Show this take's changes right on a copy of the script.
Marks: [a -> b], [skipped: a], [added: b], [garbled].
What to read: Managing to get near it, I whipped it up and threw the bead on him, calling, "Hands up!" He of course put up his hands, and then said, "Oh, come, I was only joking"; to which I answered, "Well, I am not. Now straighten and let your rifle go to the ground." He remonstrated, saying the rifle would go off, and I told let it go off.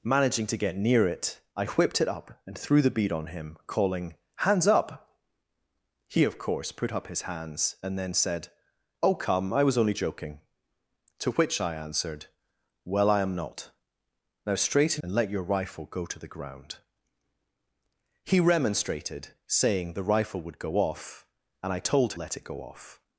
Managing to get near it, I whipped it up and threw the bead on him, calling, "Hands up!" He of course put up his hands, and then said, "Oh, come, I was only joking"; to which I answered, "Well, I am not. Now straighten and let your rifle go to the ground." He remonstrated, saying the rifle would go off, and I told let it go off.